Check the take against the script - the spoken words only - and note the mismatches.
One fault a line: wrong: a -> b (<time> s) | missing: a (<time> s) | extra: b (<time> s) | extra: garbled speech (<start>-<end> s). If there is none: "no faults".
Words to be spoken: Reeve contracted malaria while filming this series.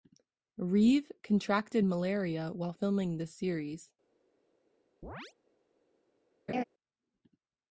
no faults